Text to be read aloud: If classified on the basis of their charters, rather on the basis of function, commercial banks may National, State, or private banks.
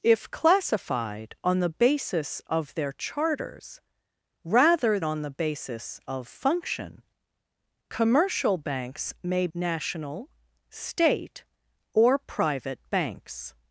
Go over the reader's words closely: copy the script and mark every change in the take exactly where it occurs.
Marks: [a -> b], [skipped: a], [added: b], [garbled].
If classified on the basis of their charters, rather on the basis of function, commercial banks may National, State, or private banks.